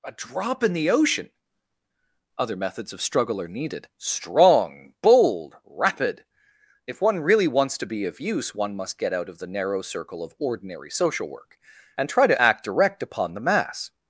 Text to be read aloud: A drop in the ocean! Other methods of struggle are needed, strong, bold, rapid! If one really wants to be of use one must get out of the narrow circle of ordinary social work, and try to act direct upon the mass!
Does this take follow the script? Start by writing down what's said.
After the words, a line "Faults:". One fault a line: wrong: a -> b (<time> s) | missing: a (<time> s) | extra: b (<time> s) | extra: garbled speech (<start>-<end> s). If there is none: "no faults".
A drop in the ocean! Other methods of struggle are needed, strong, bold, rapid! If one really wants to be of use one must get out of the narrow circle of ordinary social work, and try to act direct upon the mass!
Faults:
no faults